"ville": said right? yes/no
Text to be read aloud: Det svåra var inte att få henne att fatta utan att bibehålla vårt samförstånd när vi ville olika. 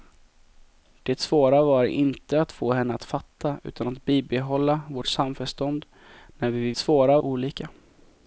no